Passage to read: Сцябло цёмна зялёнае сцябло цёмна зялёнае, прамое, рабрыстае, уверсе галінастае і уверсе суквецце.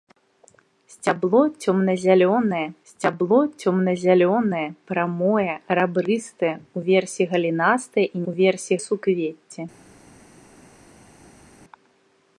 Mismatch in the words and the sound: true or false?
false